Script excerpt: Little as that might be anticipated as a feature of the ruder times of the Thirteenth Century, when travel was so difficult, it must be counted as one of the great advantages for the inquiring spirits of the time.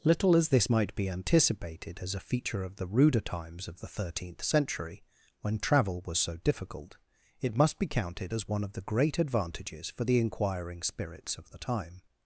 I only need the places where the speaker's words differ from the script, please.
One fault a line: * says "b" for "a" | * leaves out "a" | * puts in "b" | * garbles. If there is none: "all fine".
* says "this" for "that"